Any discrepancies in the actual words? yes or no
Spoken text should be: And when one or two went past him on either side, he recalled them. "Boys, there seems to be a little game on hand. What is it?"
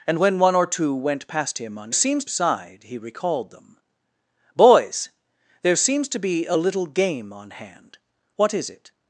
yes